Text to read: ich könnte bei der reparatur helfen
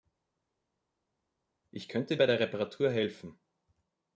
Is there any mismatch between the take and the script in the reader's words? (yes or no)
no